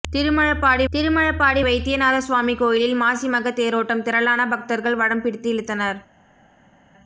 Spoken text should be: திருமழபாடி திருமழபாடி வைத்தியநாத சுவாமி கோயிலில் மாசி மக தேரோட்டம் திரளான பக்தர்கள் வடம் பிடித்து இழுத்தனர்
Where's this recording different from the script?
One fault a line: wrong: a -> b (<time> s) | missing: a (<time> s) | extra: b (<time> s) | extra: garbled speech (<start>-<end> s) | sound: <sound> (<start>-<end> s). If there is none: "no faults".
no faults